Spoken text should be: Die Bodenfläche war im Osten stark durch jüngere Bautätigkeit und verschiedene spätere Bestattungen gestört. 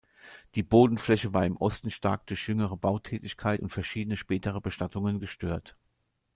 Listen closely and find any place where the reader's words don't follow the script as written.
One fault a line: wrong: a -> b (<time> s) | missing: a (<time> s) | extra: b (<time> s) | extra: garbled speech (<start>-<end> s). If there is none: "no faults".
no faults